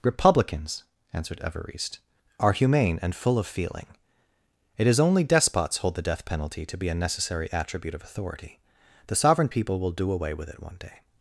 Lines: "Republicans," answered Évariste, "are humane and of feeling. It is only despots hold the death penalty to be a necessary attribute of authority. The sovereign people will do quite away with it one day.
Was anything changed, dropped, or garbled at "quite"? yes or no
yes